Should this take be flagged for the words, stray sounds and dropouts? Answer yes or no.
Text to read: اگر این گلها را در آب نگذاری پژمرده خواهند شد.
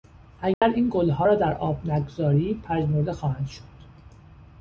yes